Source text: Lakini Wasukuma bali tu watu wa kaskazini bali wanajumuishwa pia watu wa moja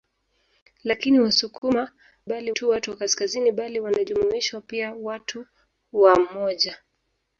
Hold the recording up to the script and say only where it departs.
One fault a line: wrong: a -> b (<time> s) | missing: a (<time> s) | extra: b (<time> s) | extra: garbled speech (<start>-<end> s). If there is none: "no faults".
no faults